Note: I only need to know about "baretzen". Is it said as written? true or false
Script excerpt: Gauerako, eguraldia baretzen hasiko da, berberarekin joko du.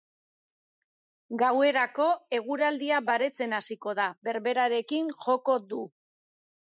true